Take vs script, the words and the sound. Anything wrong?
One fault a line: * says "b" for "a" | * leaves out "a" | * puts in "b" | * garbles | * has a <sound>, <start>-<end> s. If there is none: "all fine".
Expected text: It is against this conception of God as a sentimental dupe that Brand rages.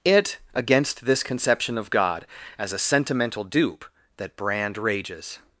* leaves out "is"